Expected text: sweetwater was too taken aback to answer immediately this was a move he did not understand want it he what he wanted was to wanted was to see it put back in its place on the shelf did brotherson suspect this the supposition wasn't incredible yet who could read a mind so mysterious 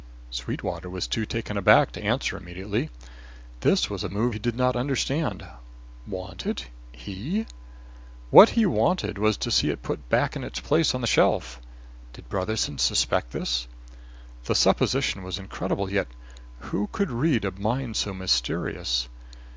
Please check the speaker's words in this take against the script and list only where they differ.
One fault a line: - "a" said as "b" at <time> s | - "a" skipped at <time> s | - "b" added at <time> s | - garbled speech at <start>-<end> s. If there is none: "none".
- "wanted was to" skipped at 9.5 s
- "wasn't" said as "was" at 15.2 s